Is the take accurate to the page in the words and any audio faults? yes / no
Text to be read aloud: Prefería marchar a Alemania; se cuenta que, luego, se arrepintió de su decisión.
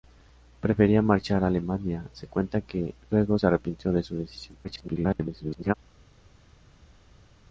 no